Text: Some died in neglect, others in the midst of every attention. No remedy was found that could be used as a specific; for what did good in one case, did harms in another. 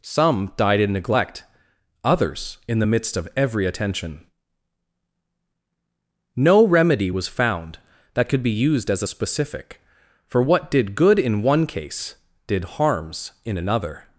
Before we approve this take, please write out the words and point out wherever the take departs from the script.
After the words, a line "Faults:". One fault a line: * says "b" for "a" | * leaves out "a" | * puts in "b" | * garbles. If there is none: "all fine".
Some died in neglect, others in the midst of every attention. No remedy was found that could be used as a specific; for what did good in one case, did harms in another.
Faults:
all fine